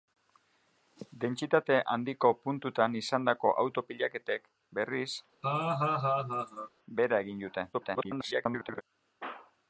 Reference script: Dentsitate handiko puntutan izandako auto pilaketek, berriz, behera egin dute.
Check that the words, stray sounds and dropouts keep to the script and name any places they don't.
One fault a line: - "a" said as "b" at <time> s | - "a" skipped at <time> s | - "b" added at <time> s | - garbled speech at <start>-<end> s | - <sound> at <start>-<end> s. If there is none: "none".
- laugh at 5.4-6.7 s
- garbled speech at 7.7-8.8 s